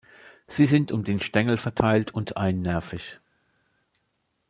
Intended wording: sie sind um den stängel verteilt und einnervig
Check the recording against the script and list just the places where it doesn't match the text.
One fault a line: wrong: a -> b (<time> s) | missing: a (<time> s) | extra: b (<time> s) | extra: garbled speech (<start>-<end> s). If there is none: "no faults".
no faults